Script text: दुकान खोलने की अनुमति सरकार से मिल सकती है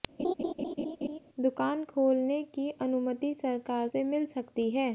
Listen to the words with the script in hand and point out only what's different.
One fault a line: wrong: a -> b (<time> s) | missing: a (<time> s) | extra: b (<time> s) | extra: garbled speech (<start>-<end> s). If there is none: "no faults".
no faults